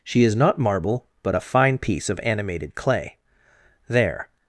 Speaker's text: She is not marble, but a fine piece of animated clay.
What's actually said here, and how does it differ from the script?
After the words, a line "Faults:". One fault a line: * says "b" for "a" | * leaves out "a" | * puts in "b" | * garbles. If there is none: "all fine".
She is not marble, but a fine piece of animated clay. There
Faults:
* puts in "There"